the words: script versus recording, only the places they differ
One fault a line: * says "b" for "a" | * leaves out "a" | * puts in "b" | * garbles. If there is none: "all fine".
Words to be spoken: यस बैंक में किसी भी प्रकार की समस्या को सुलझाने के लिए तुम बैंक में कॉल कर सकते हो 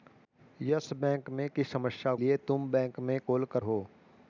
* leaves out "किसी भी प्रकार"
* leaves out "को सुलझाने के"
* leaves out "सकते"